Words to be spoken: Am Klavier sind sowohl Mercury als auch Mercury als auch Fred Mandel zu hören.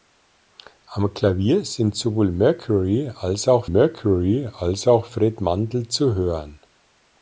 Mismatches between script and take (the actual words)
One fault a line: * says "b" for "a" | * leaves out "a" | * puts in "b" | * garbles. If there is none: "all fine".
all fine